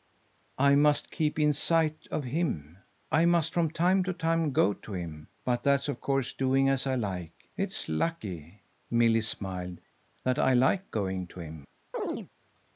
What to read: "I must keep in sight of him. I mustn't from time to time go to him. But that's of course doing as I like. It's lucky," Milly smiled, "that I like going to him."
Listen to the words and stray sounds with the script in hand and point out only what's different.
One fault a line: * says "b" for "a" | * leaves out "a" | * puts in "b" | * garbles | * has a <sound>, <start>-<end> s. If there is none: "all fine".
* says "must" for "mustn't"
* has a chirp, 11.9-12.3 s